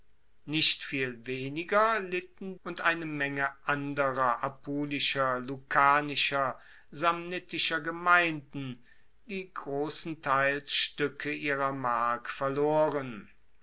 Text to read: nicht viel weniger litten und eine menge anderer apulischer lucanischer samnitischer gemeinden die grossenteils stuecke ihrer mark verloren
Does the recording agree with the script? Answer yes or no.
yes